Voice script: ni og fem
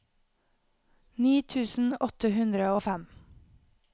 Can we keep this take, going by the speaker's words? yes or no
no